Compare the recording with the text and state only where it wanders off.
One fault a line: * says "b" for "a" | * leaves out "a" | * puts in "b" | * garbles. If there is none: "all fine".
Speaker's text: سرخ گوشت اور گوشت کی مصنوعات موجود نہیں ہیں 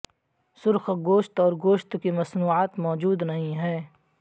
all fine